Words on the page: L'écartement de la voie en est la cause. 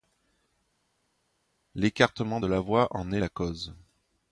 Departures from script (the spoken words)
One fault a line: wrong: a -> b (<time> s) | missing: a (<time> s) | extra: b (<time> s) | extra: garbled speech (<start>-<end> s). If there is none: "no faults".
no faults